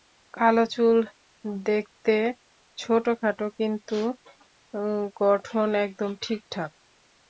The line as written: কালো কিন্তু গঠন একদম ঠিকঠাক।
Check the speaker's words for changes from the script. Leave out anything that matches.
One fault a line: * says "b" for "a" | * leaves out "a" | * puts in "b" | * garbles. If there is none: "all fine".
* puts in "চুল দেখতে ছোটখাটো"